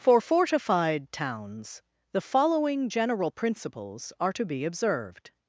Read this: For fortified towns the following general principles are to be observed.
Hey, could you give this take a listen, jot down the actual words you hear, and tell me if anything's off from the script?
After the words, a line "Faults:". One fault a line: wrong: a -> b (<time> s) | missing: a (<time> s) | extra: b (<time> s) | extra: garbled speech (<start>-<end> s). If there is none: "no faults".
For fortified towns the following general principles are to be observed.
Faults:
no faults